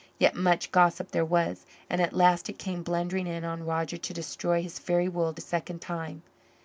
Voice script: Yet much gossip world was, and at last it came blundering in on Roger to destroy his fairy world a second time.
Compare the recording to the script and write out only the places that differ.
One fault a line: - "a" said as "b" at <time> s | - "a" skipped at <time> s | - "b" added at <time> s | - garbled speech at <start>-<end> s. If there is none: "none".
- "world" said as "there" at 1.1 s